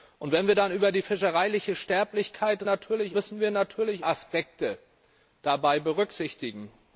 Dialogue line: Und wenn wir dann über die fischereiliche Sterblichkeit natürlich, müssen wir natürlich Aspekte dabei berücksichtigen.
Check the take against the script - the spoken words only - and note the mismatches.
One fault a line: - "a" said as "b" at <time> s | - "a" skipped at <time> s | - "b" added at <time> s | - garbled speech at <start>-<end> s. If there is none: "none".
none